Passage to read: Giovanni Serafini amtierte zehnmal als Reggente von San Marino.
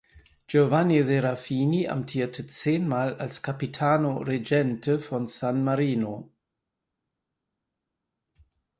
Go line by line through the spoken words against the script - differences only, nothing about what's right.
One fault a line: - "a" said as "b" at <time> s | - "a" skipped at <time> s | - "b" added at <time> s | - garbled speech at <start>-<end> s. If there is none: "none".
- "Capitano" added at 3.4 s